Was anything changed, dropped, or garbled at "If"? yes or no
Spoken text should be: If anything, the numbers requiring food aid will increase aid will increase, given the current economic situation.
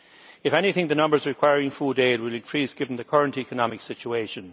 no